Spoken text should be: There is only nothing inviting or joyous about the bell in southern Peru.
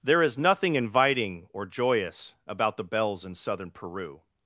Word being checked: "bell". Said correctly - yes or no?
no